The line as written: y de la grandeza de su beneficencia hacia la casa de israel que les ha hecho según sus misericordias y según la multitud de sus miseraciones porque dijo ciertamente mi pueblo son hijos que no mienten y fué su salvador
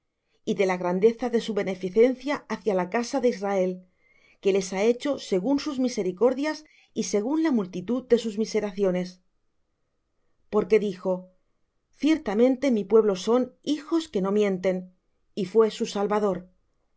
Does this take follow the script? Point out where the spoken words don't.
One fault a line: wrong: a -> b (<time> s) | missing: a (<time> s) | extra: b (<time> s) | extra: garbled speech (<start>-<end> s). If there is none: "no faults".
no faults